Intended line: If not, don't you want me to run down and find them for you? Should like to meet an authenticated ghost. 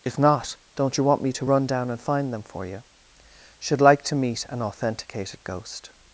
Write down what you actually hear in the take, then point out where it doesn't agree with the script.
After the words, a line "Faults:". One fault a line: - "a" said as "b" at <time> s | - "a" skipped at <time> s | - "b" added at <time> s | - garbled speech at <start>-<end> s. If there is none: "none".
If not, don't you want me to run down and find them for you? Should like to meet an authenticated ghost.
Faults:
none